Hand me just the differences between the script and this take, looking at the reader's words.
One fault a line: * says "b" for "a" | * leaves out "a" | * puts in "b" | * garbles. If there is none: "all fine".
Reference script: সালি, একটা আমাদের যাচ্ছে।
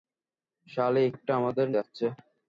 all fine